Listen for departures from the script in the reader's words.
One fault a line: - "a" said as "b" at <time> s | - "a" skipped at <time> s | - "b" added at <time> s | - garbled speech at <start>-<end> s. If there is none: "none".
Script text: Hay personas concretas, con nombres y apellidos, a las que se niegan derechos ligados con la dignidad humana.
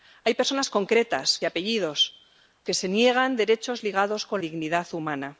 - "con nombres" skipped at 1.4 s
- "las" skipped at 2.7 s
- "la" skipped at 4.4 s